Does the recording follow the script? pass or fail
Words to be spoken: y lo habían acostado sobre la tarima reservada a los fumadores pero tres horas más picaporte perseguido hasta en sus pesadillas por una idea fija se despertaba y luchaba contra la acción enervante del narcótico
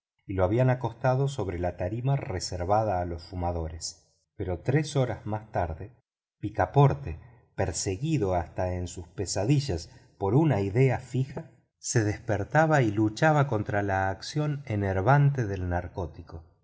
fail